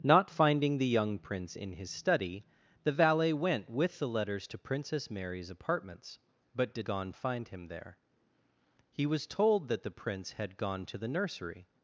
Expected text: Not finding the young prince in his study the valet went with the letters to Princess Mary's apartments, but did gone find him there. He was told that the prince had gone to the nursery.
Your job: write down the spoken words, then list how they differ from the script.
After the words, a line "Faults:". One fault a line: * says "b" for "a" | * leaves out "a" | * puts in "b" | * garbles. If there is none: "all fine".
Not finding the young prince in his study the valet went with the letters to Princess Mary's apartments, but did gone find him there. He was told that the prince had gone to the nursery.
Faults:
all fine